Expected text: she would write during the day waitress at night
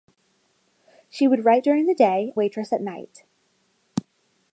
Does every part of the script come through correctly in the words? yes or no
yes